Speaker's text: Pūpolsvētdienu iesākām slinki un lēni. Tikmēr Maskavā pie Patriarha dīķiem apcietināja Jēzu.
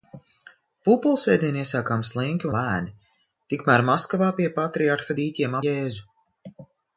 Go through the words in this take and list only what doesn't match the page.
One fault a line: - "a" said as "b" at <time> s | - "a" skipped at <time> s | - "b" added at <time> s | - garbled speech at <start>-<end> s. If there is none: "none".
- "un" skipped at 2.5 s
- "apcietināja" skipped at 5.6 s